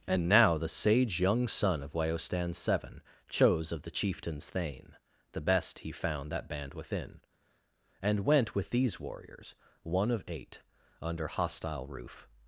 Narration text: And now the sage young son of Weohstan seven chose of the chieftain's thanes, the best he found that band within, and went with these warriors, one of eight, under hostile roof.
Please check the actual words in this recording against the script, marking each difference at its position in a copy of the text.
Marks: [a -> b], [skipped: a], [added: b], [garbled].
And now the sage young son of Weohstan seven chose of the chieftain's [thanes, -> thane] the best he found that band within, and went with these warriors, one of eight, under hostile roof.